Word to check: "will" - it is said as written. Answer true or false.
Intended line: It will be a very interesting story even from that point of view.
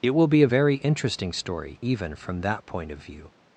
true